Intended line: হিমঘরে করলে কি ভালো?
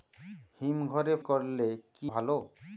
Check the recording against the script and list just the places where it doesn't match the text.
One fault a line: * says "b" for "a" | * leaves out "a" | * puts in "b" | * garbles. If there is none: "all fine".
all fine